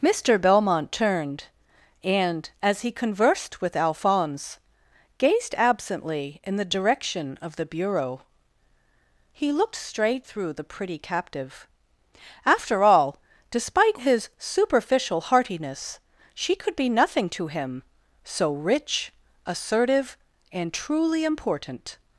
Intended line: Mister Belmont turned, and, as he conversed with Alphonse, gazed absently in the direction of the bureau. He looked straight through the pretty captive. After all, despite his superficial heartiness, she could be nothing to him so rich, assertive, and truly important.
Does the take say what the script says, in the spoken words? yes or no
yes